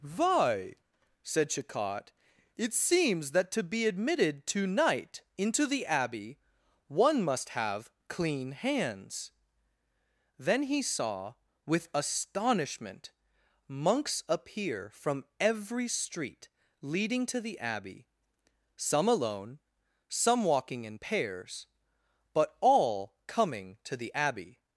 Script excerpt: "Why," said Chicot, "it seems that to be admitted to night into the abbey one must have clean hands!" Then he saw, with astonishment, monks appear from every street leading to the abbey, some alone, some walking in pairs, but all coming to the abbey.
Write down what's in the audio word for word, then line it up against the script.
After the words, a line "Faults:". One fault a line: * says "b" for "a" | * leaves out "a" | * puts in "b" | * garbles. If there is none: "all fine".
"Why," said Chicot, "it seems that to be admitted to night into the abbey one must have clean hands!" Then he saw, with astonishment, monks appear from every street leading to the abbey, some alone, some walking in pairs, but all coming to the abbey.
Faults:
all fine